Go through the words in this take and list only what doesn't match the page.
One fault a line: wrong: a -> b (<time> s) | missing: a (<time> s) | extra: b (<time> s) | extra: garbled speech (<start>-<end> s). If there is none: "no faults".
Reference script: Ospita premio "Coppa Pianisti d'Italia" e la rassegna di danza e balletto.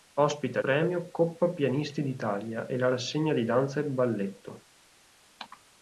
no faults